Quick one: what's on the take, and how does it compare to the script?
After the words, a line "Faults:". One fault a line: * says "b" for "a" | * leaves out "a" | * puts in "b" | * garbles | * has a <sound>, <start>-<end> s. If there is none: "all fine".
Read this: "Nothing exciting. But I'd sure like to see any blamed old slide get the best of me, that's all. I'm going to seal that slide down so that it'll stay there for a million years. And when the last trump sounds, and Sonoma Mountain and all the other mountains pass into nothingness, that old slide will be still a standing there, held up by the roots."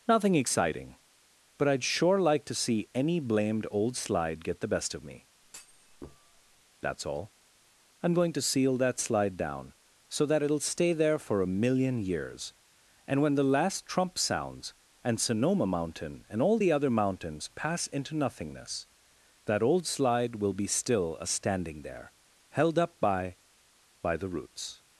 "Nothing exciting. But I'd sure like to see any blamed old slide get the best of me, that's all. I'm going to seal that slide down so that it'll stay there for a million years. And when the last trump sounds, and Sonoma Mountain and all the other mountains pass into nothingness, that old slide will be still a standing there, held up by by the roots."
Faults:
* has a thud, 5.4-6.6 s
* puts in "by"